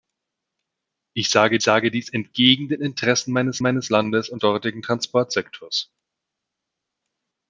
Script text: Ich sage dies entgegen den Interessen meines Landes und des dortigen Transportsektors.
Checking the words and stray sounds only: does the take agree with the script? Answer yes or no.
no